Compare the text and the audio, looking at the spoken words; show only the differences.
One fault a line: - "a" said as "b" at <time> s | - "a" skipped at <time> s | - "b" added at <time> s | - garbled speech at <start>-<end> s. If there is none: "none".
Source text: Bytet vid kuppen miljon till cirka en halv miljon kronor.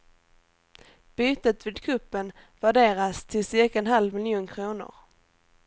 - "miljon" said as "värderas" at 2.6 s